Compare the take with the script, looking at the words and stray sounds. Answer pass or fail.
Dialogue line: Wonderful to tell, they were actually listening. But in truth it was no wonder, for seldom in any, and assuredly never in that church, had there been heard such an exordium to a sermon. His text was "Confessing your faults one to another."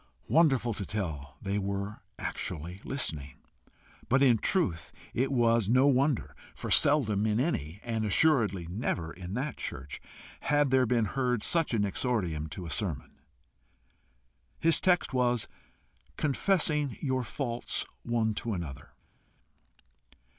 pass